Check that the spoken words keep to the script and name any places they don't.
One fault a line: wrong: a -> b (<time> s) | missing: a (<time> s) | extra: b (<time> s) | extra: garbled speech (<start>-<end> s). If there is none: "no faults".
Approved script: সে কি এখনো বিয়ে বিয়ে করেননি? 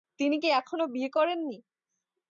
wrong: সে -> তিনি (0.2 s)
missing: বিয়ে (1.1 s)